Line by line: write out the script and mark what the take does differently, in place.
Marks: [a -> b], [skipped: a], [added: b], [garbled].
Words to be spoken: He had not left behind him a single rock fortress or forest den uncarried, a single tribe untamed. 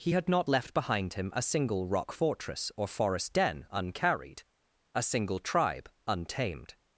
He had not left behind him a single rock fortress or forest den uncarried, a single tribe untamed.